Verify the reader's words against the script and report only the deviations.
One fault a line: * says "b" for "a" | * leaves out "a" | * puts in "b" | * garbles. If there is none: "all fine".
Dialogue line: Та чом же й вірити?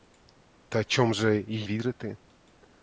all fine